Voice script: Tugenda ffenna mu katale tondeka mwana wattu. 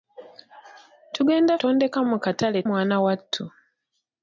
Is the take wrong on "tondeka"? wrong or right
wrong